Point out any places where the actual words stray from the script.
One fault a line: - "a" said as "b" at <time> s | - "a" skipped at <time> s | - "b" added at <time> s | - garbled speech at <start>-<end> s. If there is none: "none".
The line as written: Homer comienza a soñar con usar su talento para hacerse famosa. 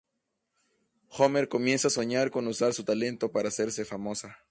none